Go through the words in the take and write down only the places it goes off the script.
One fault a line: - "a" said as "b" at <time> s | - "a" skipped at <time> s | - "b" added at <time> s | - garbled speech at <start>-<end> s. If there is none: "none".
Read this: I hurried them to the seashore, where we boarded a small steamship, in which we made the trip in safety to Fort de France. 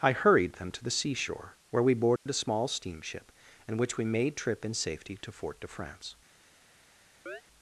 - "the" skipped at 4.3 s